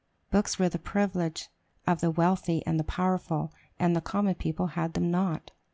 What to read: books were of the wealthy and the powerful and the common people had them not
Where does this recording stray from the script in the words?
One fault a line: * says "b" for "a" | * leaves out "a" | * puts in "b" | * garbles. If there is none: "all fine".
* puts in "the privilege"